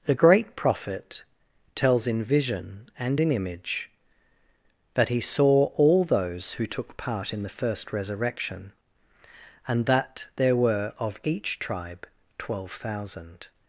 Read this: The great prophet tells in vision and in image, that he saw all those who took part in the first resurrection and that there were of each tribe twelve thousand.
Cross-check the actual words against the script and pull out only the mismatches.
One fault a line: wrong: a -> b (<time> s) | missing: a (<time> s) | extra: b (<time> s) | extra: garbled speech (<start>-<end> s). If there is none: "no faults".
no faults